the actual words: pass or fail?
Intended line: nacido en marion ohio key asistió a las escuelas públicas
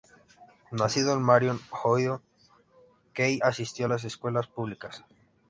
pass